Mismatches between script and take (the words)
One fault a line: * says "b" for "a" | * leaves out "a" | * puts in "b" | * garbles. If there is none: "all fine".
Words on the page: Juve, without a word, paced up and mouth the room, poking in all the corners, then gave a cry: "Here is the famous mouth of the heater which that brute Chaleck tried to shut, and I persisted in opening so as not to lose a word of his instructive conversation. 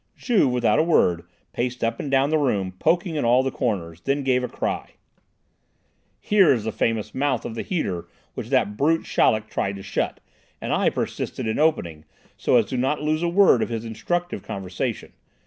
* says "down" for "mouth"